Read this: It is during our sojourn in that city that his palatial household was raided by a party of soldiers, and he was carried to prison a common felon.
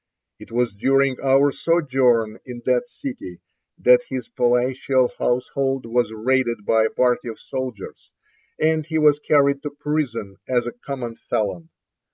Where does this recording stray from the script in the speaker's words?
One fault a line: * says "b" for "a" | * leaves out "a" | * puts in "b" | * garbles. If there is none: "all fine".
* says "was" for "is"
* puts in "as"